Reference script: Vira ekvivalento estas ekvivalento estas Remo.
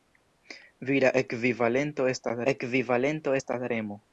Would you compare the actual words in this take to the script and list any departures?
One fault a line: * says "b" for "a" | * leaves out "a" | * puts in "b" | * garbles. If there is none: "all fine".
all fine